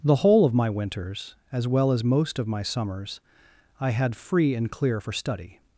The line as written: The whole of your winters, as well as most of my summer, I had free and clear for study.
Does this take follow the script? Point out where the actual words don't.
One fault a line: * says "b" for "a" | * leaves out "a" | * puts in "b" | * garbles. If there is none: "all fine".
* says "my" for "your"
* says "summers" for "summer"